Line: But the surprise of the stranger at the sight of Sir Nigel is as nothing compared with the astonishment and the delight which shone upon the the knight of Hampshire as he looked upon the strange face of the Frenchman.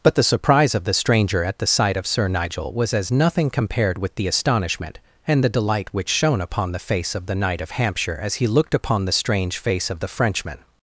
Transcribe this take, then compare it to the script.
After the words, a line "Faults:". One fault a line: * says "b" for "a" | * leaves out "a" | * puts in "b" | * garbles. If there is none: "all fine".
But the surprise of the stranger at the sight of Sir Nigel was as nothing compared with the astonishment and the delight which shone upon the face of the knight of Hampshire as he looked upon the strange face of the Frenchman.
Faults:
* says "was" for "is"
* puts in "face of"